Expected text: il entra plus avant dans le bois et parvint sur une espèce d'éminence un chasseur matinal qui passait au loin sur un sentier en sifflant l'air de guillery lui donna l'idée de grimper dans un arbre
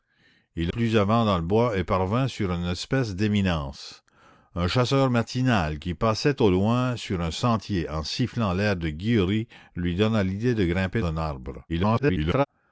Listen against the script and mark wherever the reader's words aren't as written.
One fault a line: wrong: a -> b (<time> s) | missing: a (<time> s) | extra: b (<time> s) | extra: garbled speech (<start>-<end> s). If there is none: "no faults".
missing: entra (0.7 s)
missing: dans (11.0 s)
extra: garbled speech (11.7-12.5 s)